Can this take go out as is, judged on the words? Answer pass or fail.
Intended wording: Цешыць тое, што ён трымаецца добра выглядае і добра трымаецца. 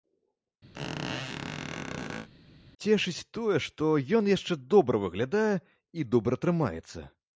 fail